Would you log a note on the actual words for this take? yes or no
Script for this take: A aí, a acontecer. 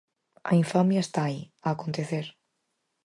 yes